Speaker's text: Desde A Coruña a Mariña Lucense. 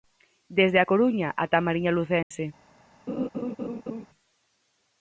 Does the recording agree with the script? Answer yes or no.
no